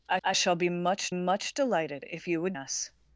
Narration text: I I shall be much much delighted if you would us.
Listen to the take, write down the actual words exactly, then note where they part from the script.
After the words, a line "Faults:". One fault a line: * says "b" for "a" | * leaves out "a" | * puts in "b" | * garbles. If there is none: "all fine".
I I shall be much much delighted if you would us.
Faults:
all fine